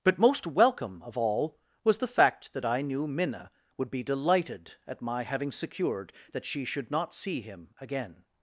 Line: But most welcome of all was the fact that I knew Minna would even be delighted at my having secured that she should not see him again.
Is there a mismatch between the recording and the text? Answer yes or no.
yes